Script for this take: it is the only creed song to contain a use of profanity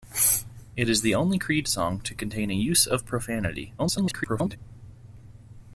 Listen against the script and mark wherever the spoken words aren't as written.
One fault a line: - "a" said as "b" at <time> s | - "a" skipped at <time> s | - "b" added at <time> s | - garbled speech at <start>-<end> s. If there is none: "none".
- garbled speech at 3.8-4.6 s